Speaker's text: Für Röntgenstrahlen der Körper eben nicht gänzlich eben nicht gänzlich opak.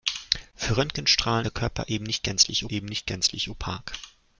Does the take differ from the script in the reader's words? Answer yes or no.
no